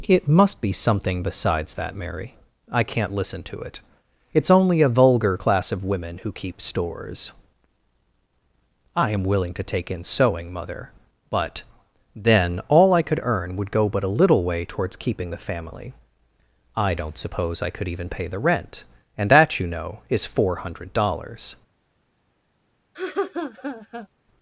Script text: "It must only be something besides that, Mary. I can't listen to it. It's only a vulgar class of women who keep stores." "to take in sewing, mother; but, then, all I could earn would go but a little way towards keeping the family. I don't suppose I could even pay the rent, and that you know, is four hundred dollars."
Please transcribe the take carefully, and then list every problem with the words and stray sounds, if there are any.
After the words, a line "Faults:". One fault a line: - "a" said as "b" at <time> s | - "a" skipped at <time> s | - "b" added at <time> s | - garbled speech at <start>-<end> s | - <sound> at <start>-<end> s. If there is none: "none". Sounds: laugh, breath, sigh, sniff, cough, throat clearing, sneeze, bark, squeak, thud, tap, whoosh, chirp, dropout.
"It must be something besides that, Mary. I can't listen to it. It's only a vulgar class of women who keep stores." "I am willing to take in sewing, mother; but, then, all I could earn would go but a little way towards keeping the family. I don't suppose I could even pay the rent, and that you know, is four hundred dollars."
Faults:
- "only" skipped at 0.6 s
- "I am willing" added at 8.9 s
- laugh at 22.9-24.1 s